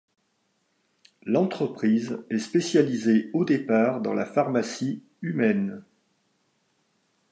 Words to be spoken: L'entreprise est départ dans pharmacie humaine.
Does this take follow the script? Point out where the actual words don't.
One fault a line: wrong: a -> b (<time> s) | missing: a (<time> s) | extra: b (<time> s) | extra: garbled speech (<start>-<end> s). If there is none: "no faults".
extra: spécialisée au (2.4 s)
extra: la (4.1 s)